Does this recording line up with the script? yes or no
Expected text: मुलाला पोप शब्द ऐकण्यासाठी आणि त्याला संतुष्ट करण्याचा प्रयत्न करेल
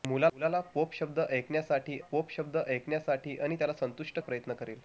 no